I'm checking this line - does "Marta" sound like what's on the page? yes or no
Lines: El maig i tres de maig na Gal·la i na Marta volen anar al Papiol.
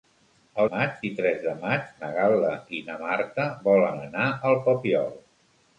yes